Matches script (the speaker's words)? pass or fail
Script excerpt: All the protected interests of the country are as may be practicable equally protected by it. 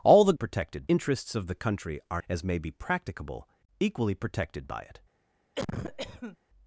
pass